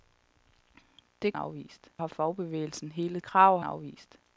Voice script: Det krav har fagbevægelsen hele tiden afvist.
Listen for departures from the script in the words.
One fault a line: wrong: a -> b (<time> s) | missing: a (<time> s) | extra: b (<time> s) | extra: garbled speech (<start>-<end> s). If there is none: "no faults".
wrong: krav -> afvist (1.4 s)
wrong: tiden -> krav (3.2 s)